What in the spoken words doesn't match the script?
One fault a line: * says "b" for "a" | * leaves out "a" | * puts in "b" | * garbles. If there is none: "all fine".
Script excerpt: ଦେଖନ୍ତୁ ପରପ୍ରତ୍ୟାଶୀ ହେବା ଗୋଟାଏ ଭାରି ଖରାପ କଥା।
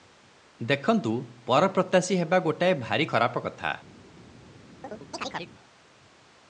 all fine